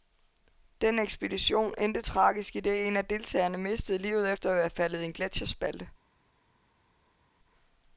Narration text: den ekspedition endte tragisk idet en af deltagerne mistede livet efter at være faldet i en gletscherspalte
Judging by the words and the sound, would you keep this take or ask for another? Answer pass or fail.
pass